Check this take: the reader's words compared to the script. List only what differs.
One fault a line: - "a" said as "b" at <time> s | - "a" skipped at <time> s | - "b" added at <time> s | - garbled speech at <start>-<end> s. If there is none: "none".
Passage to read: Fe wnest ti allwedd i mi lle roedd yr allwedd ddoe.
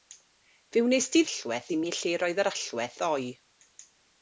none